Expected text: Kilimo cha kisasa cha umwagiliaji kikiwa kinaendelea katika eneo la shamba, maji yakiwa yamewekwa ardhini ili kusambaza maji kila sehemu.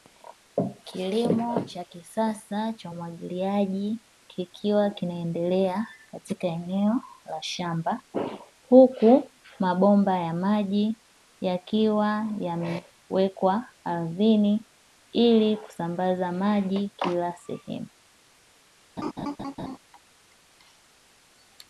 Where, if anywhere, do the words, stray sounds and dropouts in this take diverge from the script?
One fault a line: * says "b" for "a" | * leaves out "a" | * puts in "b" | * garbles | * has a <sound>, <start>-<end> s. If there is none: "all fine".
* puts in "huku mabomba ya"
* has a laugh, 19.0-19.8 s